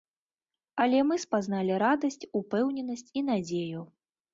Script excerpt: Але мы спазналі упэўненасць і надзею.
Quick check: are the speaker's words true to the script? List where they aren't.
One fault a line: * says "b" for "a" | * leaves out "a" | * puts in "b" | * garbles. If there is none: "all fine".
* puts in "радасць"